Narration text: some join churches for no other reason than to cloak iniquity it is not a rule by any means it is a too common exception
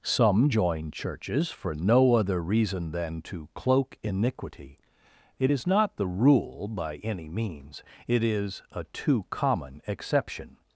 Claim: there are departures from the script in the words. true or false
true